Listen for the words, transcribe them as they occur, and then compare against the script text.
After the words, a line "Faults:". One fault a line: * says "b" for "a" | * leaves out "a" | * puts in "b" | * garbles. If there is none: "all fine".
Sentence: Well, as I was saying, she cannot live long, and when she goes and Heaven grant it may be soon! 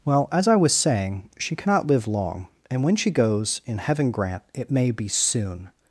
Well, as I was saying, she cannot live long, and when she goes in Heaven grant it may be soon!
Faults:
* says "in" for "and"